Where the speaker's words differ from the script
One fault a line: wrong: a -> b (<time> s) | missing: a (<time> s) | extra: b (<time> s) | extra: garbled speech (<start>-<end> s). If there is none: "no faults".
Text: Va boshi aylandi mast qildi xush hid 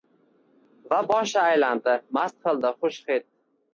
no faults